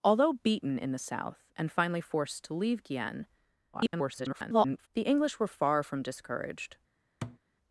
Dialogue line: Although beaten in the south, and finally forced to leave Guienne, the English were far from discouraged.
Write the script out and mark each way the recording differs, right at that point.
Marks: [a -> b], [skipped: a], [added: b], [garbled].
Although beaten in the south, and finally forced to leave Guienne, [garbled] the English were far from discouraged.